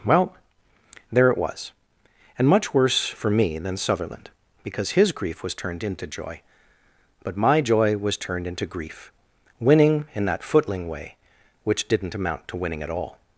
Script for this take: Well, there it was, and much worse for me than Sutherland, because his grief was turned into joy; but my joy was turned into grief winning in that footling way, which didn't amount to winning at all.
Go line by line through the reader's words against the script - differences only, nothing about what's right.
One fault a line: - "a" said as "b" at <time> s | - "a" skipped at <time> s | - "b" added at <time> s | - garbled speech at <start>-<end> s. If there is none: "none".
none